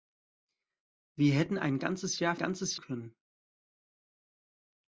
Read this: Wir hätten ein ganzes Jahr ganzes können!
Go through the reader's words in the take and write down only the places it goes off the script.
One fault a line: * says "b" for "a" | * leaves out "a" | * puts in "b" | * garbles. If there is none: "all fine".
all fine